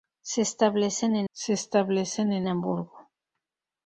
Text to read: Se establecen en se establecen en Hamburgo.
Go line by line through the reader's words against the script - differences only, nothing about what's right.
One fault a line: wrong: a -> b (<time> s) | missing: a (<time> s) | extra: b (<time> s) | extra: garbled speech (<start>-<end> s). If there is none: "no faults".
no faults